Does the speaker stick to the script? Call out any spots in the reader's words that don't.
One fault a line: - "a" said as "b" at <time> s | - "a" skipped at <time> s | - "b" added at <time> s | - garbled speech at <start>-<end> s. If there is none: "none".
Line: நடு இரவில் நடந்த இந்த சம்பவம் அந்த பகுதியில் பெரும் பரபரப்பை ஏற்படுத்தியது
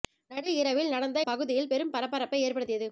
- "இந்த சம்பவம் அந்த" skipped at 1.2 s